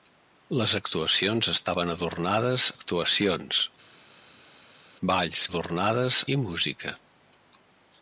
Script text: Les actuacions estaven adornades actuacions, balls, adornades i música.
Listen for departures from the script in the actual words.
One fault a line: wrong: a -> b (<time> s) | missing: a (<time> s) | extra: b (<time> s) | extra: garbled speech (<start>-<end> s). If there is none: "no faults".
no faults